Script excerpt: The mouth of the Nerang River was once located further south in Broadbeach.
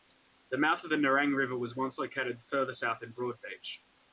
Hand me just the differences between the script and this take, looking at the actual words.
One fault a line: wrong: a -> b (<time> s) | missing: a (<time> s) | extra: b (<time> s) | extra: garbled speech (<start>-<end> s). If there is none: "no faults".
no faults